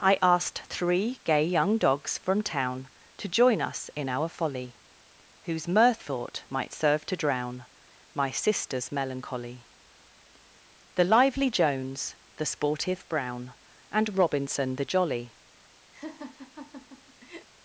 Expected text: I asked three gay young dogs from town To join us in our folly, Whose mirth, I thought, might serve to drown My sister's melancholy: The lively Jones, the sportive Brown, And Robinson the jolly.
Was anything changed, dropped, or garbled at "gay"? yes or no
no